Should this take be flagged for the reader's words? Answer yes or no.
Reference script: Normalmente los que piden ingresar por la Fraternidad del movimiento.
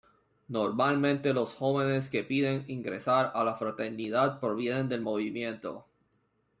yes